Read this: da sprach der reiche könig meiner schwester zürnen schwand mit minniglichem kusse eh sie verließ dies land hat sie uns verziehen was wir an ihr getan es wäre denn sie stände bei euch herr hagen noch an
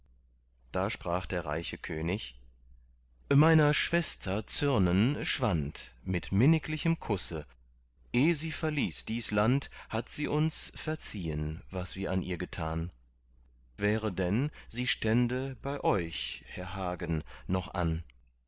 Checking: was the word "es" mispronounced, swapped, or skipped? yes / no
yes